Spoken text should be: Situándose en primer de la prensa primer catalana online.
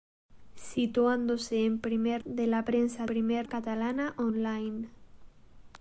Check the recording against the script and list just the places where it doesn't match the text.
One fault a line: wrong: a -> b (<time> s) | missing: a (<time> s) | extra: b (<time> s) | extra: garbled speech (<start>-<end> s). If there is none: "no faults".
no faults